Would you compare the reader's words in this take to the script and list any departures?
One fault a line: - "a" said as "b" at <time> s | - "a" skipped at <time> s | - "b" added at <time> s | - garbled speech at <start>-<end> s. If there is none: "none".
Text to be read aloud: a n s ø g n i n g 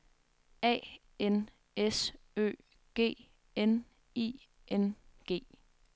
none